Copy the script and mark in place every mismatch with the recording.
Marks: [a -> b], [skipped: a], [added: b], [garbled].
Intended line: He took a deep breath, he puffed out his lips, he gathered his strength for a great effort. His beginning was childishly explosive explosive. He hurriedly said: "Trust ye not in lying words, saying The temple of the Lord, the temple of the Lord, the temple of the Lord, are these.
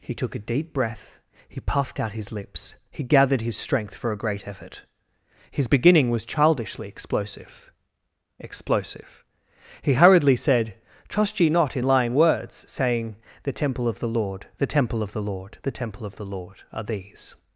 He took a deep breath, he puffed out his lips, he gathered his strength for a great effort. His beginning was childishly explosive explosive. He hurriedly said: "Trust ye not in lying words, saying The temple of the Lord, the temple of the Lord, the temple of the Lord, are these.